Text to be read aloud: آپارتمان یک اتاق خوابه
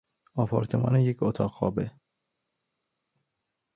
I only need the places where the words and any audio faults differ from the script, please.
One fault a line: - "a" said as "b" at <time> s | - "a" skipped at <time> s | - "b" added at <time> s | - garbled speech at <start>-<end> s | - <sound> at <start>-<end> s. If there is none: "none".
none